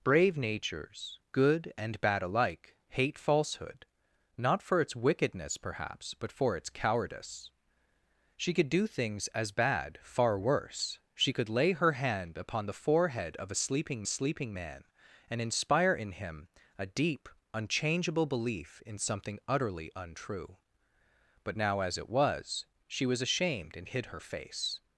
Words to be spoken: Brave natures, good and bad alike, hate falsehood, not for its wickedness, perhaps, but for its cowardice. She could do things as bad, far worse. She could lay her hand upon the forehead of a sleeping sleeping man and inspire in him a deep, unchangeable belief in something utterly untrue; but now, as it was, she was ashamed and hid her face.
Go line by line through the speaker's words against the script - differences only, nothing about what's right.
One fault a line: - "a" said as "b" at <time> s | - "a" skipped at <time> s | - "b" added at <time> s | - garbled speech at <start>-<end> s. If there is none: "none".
none